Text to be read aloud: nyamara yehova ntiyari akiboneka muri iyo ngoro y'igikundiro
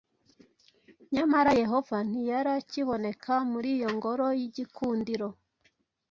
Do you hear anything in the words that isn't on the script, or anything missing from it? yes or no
no